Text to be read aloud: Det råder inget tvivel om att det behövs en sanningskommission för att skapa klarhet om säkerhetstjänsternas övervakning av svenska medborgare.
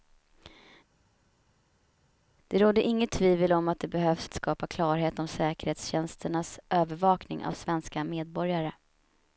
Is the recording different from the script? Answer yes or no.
yes